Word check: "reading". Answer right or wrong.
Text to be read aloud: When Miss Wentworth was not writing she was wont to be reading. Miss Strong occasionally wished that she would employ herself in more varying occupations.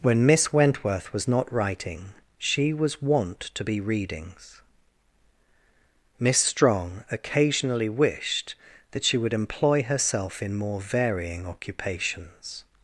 wrong